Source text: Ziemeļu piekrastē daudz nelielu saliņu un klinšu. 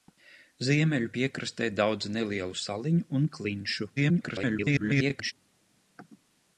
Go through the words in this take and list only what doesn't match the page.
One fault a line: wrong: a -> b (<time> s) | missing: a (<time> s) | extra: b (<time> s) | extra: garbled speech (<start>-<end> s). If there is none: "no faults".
extra: garbled speech (4.0-5.3 s)